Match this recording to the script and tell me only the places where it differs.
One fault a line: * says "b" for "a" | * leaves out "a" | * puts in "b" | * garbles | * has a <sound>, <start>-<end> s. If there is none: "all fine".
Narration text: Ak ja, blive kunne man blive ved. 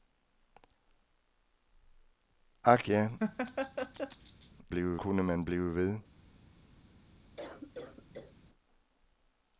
* has a laugh, 3.2-4.5 s
* has a cough, 7.4-8.4 s